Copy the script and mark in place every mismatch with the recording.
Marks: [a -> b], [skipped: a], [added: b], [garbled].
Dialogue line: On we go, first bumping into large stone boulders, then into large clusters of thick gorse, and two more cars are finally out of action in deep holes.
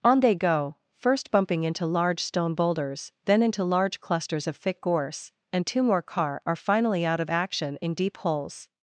On [we -> they] go, first bumping into large stone boulders, then into large clusters of thick gorse, and two more [cars -> car] are finally out of action in deep holes.